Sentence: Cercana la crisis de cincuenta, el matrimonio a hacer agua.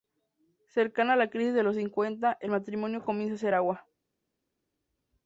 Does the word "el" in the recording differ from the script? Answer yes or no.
no